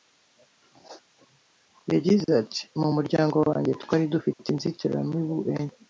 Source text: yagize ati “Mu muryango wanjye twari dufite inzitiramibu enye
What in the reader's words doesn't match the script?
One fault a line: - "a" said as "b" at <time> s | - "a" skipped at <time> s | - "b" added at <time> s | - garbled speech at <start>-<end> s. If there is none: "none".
none